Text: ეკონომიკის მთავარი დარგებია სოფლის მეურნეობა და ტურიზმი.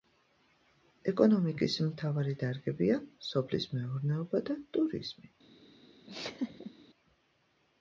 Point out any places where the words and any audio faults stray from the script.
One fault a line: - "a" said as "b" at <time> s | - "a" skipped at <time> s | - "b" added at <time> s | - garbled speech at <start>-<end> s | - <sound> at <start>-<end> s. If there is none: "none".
- laugh at 6.1-6.7 s